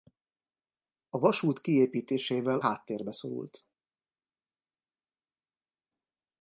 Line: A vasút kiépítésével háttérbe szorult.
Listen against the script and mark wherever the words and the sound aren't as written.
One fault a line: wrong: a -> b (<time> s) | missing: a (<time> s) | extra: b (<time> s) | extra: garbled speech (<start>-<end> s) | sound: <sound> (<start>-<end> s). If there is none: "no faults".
no faults